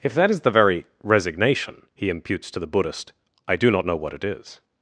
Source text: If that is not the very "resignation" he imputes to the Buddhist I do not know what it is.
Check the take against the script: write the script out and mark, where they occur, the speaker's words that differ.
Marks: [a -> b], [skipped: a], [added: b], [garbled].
If that is [skipped: not] the very "resignation" he imputes to the Buddhist I do not know what it is.